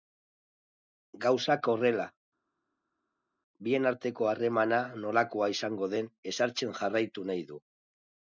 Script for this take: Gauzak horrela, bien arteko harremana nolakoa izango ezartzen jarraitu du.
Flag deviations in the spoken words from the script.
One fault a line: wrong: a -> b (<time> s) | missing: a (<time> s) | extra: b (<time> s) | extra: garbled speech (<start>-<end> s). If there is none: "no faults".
extra: den (6.0 s)
extra: nahi (7.3 s)